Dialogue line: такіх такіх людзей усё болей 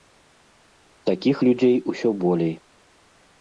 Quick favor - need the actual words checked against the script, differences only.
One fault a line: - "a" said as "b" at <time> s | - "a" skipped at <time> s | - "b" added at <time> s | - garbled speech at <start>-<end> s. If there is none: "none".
- "такіх" skipped at 1.4 s